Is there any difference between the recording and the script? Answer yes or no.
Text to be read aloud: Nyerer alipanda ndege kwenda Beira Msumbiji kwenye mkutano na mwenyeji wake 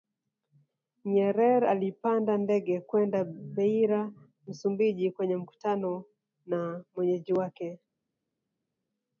no